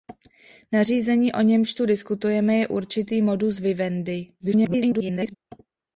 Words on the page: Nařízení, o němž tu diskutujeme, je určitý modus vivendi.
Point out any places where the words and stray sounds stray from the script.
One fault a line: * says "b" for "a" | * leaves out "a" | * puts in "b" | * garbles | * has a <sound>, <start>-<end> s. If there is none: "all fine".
* garbles